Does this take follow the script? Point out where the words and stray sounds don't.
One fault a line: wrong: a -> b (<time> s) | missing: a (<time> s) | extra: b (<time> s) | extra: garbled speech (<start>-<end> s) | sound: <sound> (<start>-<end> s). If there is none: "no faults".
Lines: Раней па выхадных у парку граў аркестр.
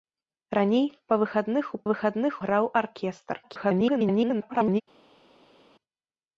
wrong: парку -> выхадных (1.9 s)
extra: garbled speech (3.4-4.8 s)